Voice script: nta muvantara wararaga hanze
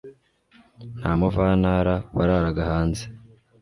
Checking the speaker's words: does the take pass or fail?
pass